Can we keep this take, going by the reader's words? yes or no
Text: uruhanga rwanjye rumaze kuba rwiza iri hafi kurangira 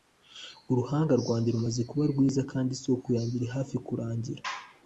no